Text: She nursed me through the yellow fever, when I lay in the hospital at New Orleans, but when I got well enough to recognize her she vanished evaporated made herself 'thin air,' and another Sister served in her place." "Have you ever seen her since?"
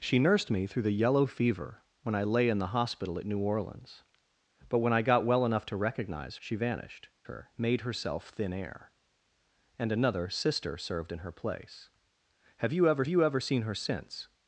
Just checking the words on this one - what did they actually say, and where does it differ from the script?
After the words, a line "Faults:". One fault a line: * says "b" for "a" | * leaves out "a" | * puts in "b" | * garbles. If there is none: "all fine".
She nursed me through the yellow fever, when I lay in the hospital at New Orleans, but when I got well enough to recognize she vanished her made herself 'thin air,' and another Sister served in her place." "Have you ever you ever seen her since?"
Faults:
* leaves out "her"
* says "her" for "evaporated"
* puts in "you ever"